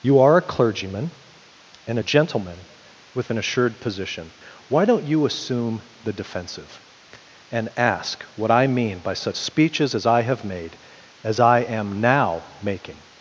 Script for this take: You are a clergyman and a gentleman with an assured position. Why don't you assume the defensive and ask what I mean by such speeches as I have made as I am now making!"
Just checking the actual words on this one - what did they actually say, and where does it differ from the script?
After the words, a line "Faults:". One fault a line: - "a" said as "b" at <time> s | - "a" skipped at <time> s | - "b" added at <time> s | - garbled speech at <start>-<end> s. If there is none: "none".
You are a clergyman and a gentleman with an assured position. Why don't you assume the defensive and ask what I mean by such speeches as I have made as I am now making!"
Faults:
none